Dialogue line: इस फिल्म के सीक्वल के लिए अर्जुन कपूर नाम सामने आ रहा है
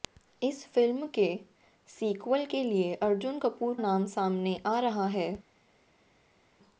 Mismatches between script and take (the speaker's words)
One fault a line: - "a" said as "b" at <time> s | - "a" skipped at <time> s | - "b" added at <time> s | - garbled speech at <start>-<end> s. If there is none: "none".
none